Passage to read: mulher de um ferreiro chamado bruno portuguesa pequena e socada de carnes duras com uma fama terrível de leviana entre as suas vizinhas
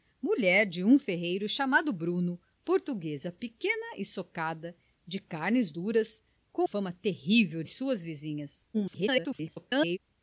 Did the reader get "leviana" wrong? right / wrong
wrong